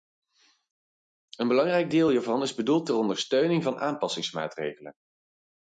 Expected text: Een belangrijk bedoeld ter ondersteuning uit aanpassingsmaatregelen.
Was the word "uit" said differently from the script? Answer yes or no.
yes